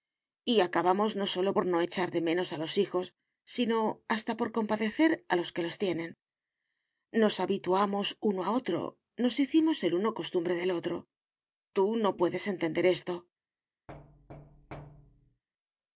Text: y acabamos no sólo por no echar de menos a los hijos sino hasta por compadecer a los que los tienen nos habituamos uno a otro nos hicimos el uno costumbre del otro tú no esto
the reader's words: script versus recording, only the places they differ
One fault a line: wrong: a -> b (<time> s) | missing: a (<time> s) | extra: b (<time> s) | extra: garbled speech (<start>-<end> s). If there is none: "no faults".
extra: puedes entender (12.2 s)